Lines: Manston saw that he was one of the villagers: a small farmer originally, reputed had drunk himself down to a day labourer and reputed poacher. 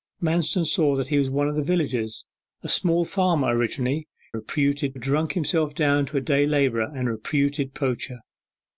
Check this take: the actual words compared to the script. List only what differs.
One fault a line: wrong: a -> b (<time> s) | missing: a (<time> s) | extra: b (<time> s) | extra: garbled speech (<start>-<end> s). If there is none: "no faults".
no faults